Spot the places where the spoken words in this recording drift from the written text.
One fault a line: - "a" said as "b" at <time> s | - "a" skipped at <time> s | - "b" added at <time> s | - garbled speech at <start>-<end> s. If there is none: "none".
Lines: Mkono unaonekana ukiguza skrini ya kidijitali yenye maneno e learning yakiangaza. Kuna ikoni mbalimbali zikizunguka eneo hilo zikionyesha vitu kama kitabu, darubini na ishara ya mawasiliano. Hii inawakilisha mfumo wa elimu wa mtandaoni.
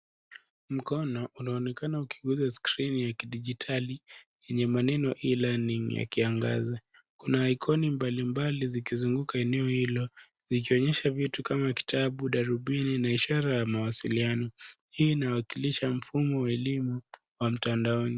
none